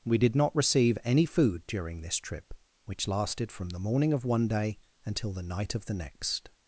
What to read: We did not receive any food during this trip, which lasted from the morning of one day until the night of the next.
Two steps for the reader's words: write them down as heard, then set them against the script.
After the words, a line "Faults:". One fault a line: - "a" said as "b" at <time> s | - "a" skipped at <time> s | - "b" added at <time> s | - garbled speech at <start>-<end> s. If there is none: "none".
We did not receive any food during this trip, which lasted from the morning of one day until the night of the next.
Faults:
none